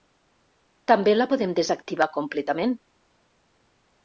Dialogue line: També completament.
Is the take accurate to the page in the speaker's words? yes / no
no